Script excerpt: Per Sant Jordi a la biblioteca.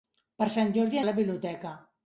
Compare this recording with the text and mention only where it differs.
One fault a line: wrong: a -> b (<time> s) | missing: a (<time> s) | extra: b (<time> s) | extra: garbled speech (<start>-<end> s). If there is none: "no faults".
no faults